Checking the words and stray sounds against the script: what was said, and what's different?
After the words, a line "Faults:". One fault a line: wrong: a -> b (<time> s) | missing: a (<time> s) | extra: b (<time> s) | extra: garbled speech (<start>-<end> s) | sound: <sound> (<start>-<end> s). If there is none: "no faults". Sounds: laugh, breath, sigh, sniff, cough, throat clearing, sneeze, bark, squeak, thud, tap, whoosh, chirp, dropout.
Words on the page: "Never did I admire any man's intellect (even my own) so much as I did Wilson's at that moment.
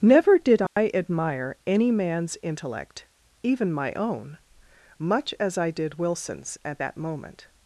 "Never did I admire any man's intellect (even my own) much as I did Wilson's at that moment.
Faults:
sound: dropout (0.7-0.8 s)
missing: so (4.4 s)